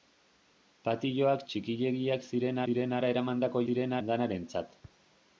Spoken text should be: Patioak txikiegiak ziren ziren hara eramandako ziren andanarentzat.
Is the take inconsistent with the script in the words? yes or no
no